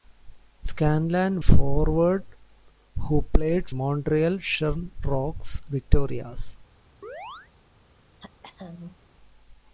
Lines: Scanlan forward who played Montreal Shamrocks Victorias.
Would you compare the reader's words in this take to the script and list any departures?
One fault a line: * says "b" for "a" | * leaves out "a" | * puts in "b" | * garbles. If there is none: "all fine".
all fine